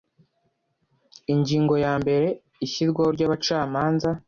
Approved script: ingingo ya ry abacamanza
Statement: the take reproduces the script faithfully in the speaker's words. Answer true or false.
false